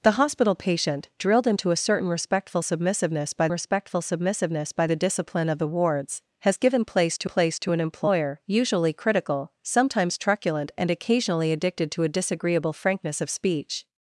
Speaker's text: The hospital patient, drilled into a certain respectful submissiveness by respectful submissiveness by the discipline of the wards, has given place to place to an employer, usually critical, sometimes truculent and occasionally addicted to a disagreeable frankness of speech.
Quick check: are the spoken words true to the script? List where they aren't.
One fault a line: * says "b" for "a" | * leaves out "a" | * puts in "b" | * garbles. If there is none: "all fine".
all fine